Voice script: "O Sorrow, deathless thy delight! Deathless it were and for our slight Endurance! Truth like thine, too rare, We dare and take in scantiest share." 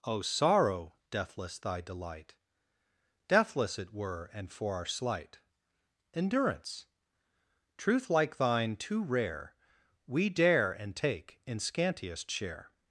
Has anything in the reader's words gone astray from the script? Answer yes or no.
no